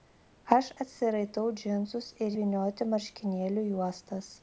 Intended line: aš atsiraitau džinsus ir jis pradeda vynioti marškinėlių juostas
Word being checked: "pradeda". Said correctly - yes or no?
no